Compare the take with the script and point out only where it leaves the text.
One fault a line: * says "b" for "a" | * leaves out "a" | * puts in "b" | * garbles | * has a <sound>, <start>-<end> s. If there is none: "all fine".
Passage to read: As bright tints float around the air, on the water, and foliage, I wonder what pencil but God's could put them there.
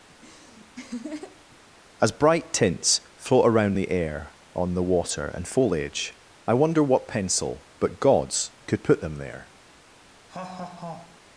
* has a laugh, 0.1-1.6 s
* has a laugh, 10.3-11.2 s